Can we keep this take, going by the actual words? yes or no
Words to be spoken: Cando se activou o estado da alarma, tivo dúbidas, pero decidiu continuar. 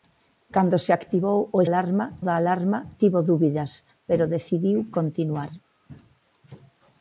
no